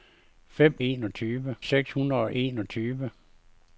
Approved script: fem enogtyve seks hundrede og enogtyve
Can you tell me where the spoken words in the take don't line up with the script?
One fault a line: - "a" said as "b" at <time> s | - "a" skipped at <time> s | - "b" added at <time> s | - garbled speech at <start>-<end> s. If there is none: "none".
none